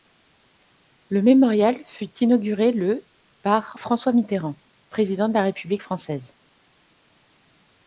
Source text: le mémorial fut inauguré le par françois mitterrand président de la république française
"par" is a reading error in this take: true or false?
false